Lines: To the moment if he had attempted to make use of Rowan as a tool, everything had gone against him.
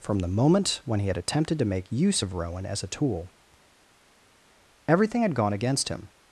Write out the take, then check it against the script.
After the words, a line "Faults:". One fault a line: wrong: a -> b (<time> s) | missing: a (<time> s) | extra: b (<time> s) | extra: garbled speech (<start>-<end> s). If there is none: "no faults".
From the moment when he had attempted to make use of Rowan as a tool, everything had gone against him.
Faults:
wrong: To -> From (0.0 s)
wrong: if -> when (0.8 s)